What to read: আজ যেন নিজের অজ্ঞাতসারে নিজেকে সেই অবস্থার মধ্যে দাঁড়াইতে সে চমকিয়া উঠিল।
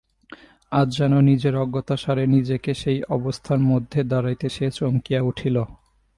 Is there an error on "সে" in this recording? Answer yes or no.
no